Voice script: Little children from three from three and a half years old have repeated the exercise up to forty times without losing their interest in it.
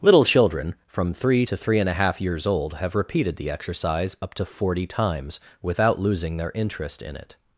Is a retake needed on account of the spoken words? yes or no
yes